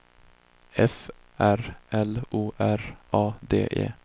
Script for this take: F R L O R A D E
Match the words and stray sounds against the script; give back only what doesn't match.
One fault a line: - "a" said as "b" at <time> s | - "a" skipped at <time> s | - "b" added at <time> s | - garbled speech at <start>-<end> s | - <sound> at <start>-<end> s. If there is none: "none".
none